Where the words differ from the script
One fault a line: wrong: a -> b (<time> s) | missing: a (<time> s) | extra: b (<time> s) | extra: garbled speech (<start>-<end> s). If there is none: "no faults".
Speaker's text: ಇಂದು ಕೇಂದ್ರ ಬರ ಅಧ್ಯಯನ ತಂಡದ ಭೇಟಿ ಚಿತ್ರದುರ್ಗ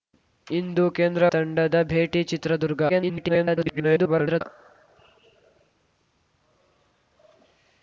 missing: ಬರ ಅಧ್ಯಯನ (1.2 s)
extra: garbled speech (2.9-4.4 s)